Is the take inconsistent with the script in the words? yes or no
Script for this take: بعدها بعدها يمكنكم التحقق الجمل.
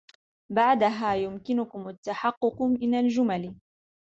yes